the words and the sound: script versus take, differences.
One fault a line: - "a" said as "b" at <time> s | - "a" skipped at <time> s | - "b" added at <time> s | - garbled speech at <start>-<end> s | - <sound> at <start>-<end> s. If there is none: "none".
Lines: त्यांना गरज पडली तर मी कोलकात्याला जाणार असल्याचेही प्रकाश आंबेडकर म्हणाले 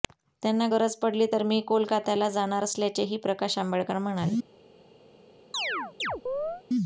- chirp at 5.5-6.6 s